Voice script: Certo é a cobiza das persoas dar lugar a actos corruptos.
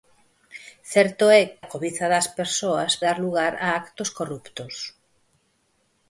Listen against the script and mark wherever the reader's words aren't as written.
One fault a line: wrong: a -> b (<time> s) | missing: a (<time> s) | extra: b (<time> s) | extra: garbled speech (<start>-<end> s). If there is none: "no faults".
no faults